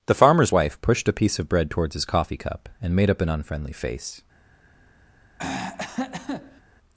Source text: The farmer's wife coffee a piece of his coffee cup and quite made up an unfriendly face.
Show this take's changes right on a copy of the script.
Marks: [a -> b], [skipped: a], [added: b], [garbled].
The farmer's wife [coffee -> pushed] a piece of [added: bread towards] his coffee cup and [skipped: quite] made up an unfriendly face.